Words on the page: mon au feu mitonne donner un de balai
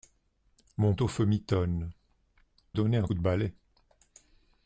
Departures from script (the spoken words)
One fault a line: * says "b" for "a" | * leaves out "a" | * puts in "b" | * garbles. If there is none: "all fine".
all fine